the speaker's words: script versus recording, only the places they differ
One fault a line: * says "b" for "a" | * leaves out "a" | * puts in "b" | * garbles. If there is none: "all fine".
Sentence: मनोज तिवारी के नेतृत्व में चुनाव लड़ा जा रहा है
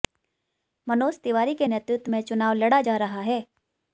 all fine